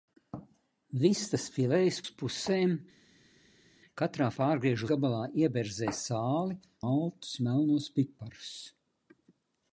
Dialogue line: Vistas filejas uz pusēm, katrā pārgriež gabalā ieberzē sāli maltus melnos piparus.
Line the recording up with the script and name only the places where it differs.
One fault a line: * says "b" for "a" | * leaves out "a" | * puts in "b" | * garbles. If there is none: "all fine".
all fine